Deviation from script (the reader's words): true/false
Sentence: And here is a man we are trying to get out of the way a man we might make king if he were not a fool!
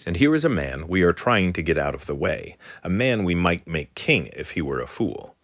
true